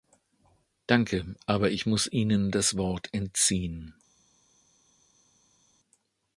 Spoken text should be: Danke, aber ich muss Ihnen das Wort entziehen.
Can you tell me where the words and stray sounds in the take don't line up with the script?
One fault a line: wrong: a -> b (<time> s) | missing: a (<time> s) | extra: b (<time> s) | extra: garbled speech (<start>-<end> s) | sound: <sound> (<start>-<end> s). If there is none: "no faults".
no faults